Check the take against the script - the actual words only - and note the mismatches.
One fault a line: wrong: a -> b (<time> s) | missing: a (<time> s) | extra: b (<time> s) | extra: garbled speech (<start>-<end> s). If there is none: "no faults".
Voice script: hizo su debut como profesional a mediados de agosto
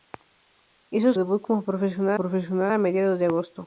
missing: su (1.1 s)
extra: profesional (2.1 s)